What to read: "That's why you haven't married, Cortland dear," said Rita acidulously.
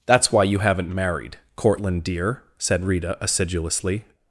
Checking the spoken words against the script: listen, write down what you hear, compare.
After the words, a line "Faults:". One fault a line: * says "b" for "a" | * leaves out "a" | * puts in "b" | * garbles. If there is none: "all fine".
"That's why you haven't married, Cortland dear," said Rita acidulously.
Faults:
all fine